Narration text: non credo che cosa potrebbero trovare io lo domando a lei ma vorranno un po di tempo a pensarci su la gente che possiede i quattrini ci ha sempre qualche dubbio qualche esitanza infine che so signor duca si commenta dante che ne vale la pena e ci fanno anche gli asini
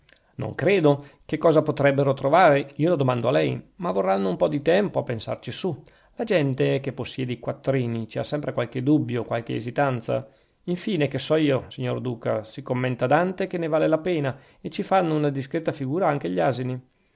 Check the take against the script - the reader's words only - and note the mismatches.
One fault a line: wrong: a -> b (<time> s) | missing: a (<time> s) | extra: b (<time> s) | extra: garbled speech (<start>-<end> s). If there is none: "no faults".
extra: io (11.3 s)
extra: una discreta figura (15.2 s)